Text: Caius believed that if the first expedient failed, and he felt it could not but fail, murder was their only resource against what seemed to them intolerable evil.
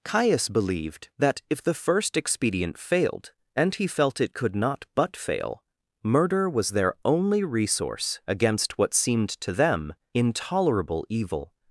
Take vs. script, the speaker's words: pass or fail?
pass